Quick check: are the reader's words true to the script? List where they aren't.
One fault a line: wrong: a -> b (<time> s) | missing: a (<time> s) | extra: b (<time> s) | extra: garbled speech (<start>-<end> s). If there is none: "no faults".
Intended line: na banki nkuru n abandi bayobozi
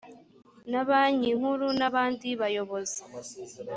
no faults